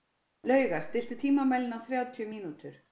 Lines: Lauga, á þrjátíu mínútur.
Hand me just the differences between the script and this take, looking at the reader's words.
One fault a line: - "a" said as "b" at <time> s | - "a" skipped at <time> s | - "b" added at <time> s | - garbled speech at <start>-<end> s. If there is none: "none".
- "stilltu tímamælinn" added at 0.9 s